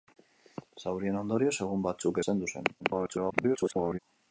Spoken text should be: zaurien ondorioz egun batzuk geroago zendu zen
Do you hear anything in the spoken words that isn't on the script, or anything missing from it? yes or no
yes